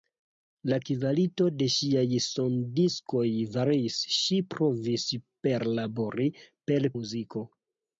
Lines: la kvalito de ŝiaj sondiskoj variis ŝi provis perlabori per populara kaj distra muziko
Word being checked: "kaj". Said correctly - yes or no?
no